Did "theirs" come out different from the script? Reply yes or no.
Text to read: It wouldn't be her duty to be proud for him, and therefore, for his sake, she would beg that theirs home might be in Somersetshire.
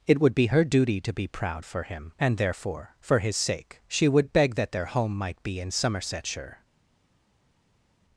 yes